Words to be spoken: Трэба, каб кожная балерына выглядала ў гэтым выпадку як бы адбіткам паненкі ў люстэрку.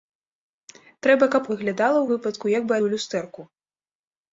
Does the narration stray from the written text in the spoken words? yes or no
yes